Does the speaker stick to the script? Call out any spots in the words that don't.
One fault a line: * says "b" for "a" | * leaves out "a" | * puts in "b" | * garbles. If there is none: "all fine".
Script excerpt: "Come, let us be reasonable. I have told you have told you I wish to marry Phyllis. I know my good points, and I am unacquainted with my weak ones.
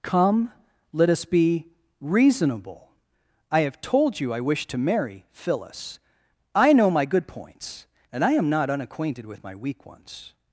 * leaves out "have told you"
* puts in "not"